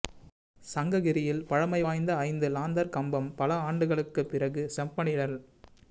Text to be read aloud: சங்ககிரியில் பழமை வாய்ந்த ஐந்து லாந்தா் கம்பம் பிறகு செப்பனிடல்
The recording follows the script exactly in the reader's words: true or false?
false